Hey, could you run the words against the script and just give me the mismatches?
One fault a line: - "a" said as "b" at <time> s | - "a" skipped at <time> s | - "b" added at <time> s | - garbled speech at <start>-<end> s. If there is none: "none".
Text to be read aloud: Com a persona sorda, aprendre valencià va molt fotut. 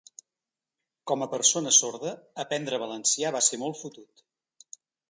- "ser" added at 3.5 s